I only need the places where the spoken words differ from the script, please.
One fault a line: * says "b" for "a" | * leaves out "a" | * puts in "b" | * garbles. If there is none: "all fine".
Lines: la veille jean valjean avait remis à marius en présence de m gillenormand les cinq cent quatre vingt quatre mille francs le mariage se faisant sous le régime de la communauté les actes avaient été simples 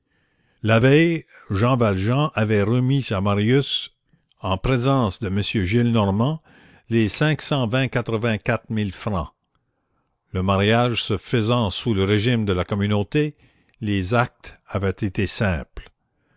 all fine